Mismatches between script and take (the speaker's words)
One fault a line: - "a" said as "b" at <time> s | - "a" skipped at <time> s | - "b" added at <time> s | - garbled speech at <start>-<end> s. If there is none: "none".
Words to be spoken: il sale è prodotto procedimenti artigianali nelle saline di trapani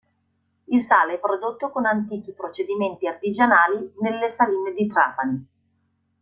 - "con antichi" added at 1.7 s